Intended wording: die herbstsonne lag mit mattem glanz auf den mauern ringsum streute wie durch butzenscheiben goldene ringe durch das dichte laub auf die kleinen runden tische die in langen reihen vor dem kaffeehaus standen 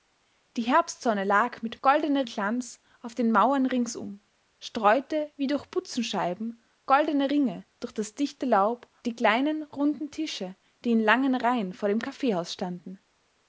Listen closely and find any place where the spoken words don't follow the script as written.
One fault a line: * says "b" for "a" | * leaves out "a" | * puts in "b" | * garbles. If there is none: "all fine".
* says "goldene" for "mattem"
* leaves out "auf"